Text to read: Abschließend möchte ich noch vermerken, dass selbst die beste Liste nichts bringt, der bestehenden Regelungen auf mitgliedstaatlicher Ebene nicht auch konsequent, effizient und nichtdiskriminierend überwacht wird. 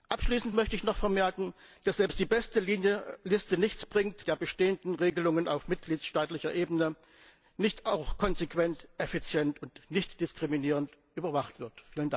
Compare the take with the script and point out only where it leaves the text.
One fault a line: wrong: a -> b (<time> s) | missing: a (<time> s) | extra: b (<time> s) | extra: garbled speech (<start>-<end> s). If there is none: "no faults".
no faults